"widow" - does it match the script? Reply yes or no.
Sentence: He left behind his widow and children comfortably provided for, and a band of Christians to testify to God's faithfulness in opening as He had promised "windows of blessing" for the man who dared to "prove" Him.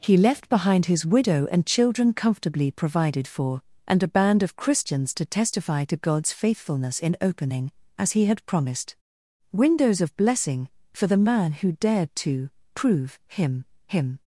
yes